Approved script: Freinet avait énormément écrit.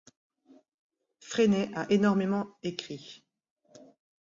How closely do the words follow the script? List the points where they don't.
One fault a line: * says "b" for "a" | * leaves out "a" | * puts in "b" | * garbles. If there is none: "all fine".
* says "a" for "avait"